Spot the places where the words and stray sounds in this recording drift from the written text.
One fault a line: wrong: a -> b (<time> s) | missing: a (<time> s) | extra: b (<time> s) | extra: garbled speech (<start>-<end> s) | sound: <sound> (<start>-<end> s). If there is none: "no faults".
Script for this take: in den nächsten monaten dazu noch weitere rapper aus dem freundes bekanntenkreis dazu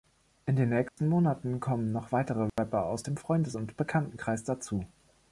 sound: dropout (0.9-1.0 s)
wrong: dazu -> kommen (1.6 s)
sound: dropout (2.5-2.6 s)
extra: und (3.5 s)